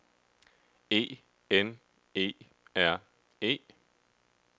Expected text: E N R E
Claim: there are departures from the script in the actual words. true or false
true